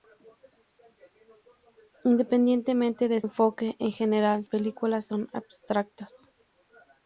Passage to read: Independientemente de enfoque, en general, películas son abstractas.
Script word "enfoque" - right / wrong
right